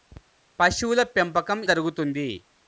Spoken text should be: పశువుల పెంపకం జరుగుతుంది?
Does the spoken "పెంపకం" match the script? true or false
true